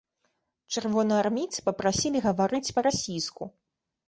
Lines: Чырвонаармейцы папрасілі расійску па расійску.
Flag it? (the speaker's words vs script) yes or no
yes